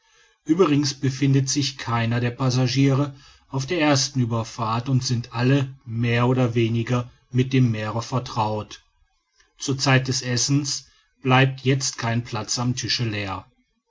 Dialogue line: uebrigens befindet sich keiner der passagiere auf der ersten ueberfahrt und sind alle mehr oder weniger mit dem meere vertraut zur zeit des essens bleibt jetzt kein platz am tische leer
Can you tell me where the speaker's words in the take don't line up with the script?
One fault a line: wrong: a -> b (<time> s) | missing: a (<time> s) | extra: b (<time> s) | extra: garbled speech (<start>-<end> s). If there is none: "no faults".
no faults